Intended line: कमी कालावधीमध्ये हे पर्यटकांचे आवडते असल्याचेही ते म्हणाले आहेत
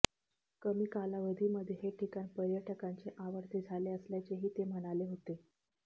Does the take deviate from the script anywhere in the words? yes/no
yes